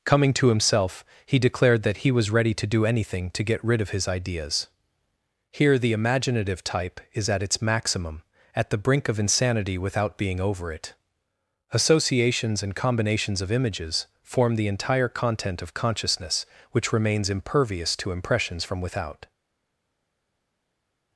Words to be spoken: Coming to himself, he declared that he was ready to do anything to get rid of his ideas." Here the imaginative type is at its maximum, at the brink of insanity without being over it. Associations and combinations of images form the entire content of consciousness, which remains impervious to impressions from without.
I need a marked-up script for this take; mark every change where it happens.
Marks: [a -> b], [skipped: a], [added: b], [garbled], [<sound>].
Coming to himself, he declared that he was ready to do anything to get rid of his ideas." Here the imaginative type is at its maximum, at the brink of insanity without being over it. Associations and combinations of images form the entire content of consciousness, which remains impervious to impressions from without.